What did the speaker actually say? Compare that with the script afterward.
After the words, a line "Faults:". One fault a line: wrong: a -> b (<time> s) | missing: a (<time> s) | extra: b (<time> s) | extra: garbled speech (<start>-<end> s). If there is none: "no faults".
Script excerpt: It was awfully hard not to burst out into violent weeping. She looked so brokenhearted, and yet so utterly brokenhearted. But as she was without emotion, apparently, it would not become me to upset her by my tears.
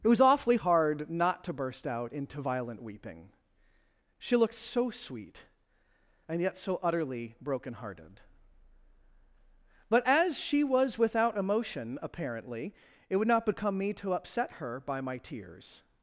It was awfully hard not to burst out into violent weeping. She looked so sweet, and yet so utterly brokenhearted. But as she was without emotion, apparently, it would not become me to upset her by my tears.
Faults:
wrong: brokenhearted -> sweet (4.9 s)